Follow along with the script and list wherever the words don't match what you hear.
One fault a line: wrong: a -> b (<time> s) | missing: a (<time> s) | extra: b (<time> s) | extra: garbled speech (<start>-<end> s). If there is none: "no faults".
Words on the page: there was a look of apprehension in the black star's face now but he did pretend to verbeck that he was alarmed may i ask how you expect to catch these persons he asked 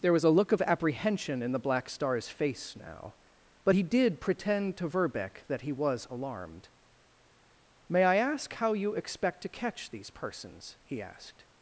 no faults